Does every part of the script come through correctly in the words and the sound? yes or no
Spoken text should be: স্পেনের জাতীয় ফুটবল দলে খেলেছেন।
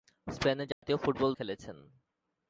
no